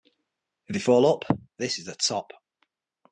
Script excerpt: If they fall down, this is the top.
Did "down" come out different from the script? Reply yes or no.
yes